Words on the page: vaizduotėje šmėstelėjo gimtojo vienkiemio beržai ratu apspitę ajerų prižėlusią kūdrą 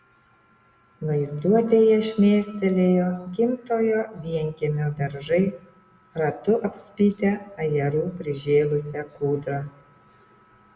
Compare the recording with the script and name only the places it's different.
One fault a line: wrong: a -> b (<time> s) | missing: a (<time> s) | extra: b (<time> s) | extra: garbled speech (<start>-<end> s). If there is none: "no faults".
no faults